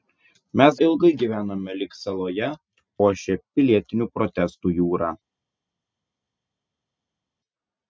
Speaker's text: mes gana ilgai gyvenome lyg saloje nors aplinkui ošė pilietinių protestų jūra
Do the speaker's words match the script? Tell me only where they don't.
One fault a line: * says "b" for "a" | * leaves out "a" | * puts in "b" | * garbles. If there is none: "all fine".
* leaves out "gana"
* leaves out "nors aplinkui"